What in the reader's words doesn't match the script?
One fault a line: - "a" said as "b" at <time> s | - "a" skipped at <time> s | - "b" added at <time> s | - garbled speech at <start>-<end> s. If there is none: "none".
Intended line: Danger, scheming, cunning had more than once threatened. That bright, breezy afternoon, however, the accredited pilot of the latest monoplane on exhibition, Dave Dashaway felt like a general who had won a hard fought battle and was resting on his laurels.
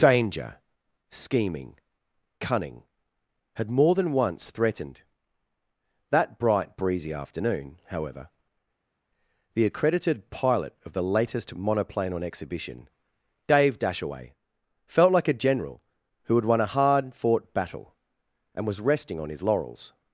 none